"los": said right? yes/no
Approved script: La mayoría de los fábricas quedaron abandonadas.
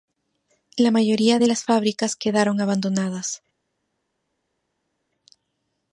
no